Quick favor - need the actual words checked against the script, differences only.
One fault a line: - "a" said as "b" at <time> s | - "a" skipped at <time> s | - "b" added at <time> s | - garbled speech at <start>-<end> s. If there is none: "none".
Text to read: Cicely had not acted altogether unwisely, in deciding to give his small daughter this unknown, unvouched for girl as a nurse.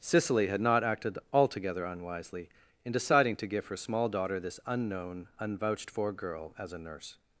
- "his" said as "her" at 3.7 s